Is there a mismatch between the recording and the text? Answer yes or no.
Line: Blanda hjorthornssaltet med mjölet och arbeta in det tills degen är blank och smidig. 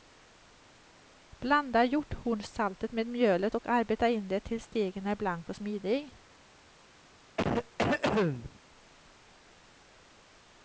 no